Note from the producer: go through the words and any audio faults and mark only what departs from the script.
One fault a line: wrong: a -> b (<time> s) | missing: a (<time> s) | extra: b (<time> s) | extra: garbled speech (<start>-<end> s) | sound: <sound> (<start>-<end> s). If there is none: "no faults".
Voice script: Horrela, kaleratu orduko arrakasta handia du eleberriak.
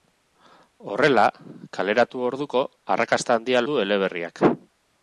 no faults